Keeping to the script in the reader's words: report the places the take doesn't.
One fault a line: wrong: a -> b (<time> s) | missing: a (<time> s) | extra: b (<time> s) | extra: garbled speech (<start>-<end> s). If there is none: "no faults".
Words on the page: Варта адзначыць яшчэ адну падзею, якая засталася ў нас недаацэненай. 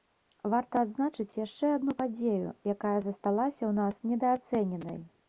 no faults